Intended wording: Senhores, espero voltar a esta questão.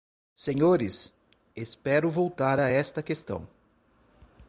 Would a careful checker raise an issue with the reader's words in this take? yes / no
no